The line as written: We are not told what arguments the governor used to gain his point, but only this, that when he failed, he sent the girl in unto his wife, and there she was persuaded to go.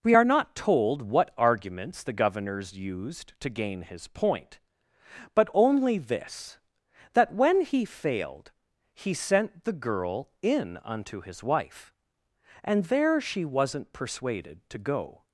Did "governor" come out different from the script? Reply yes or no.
yes